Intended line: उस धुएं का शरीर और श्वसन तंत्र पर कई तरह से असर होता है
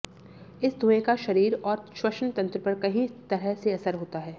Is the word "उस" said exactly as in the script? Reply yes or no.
no